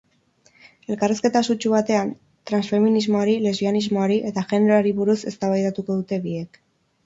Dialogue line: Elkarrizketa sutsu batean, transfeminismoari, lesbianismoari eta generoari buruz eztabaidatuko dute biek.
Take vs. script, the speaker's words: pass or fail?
pass